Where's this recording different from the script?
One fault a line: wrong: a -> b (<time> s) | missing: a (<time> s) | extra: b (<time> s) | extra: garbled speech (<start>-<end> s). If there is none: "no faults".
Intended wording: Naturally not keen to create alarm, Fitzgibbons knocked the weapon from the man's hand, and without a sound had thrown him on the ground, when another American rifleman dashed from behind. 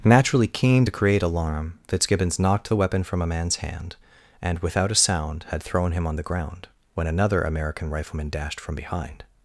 missing: not (0.5 s)
wrong: the -> a (3.2 s)